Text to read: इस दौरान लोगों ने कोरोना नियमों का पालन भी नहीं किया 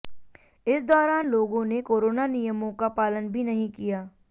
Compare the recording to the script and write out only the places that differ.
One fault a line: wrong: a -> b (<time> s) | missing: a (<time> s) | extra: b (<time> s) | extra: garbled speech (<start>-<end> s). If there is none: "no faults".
no faults